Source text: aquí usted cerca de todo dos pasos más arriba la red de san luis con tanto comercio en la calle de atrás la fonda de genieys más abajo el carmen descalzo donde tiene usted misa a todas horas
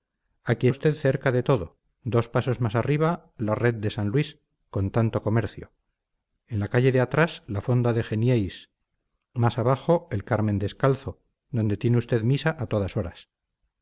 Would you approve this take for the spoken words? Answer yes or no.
yes